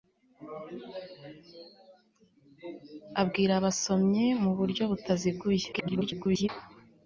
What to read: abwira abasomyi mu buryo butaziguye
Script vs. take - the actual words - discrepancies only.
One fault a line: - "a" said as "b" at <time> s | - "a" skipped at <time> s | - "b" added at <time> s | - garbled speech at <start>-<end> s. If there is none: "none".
- garbled speech at 5.7-6.5 s